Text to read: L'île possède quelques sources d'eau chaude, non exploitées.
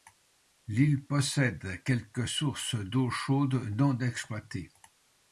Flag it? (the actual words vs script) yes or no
no